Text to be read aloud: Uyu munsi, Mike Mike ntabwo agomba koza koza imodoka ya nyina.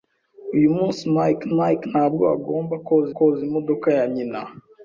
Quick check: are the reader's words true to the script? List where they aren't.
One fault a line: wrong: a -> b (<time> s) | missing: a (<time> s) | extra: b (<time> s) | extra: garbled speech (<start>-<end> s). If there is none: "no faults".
no faults